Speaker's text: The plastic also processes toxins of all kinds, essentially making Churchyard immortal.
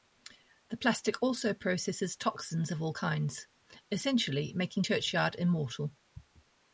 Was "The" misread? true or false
false